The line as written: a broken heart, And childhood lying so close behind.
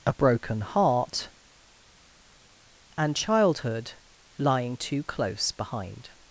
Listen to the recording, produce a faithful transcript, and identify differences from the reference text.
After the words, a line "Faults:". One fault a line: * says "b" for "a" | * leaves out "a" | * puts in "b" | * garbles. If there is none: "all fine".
a broken heart, And childhood lying too close behind.
Faults:
* says "too" for "so"